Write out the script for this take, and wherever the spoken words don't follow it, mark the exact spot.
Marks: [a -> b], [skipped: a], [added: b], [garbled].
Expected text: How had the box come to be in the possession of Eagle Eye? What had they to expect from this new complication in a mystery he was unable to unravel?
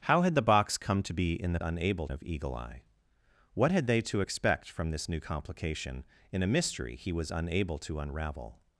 How had the box come to be in the [possession -> unable] of Eagle Eye? What had they to expect from this new complication in a mystery he was unable to unravel?